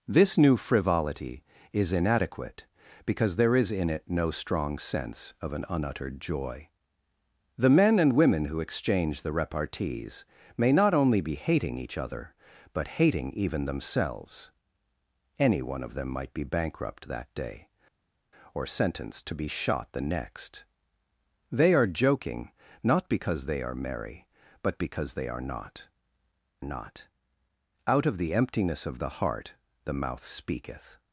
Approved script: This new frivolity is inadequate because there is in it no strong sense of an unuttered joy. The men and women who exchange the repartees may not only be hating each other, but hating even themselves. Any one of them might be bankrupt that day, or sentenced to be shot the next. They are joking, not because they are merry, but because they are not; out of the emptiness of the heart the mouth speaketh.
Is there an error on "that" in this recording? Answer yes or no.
no